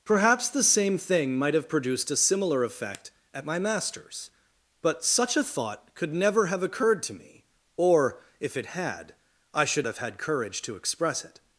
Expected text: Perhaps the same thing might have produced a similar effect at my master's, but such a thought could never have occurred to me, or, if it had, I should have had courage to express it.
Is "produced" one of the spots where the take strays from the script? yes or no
no